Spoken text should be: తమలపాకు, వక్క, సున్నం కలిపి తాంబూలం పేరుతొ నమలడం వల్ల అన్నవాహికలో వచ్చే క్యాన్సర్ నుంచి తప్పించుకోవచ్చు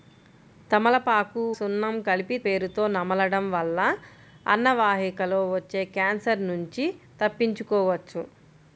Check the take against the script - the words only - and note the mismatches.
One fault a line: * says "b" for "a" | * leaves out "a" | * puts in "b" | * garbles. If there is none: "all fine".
* leaves out "వక్క"
* leaves out "తాంబూలం"